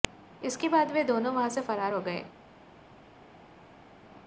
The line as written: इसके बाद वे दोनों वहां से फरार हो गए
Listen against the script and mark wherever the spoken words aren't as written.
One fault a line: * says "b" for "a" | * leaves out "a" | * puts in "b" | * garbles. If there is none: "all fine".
all fine